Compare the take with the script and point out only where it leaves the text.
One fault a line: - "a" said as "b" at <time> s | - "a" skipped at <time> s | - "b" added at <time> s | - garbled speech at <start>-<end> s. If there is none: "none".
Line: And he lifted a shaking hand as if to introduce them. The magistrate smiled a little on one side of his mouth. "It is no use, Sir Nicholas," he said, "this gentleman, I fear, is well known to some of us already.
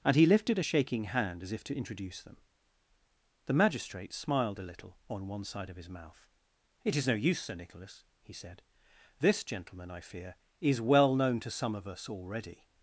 none